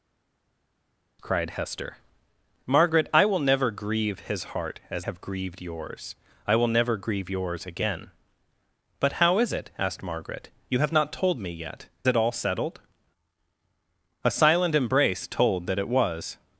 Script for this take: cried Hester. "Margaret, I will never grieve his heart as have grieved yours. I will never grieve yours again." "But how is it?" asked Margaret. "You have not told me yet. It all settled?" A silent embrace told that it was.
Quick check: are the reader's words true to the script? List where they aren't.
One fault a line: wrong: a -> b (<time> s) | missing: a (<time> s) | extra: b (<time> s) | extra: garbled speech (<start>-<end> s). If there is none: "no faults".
no faults